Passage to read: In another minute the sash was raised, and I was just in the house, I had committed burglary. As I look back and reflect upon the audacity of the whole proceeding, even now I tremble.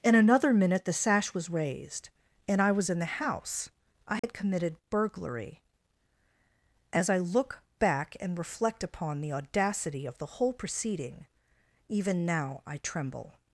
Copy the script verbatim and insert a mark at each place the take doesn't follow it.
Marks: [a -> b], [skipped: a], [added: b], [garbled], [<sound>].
In another minute the sash was raised, and I was [skipped: just] in the house, I had [dropout] committed burglary. As I look back and reflect upon the audacity of the whole proceeding, even now I tremble.